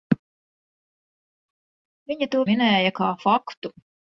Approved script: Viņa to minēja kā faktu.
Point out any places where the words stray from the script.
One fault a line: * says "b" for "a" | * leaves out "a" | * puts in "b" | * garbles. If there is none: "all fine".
all fine